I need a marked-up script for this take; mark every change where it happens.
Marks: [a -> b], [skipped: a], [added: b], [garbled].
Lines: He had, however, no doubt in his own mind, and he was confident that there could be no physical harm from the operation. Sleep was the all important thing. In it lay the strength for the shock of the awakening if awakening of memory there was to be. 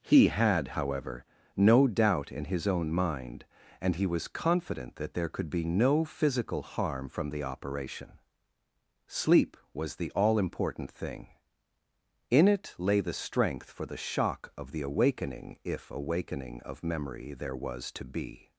He had, however, no doubt in his own mind, and he was confident that there could be no physical harm from the operation. Sleep was the all important thing. In it lay the strength for the shock of the awakening if awakening of memory there was to be.